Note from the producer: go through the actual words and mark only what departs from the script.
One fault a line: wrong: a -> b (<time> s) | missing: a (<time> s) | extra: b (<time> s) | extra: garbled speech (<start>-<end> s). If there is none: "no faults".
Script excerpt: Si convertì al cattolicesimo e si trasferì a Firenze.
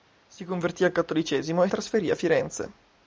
missing: si (1.7 s)